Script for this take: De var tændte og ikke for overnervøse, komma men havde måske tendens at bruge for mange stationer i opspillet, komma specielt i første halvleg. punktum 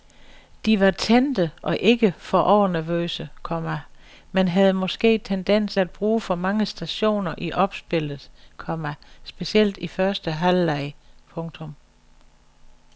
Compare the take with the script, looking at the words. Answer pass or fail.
pass